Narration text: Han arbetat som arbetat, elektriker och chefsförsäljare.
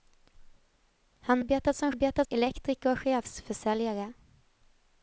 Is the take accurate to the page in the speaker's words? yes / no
yes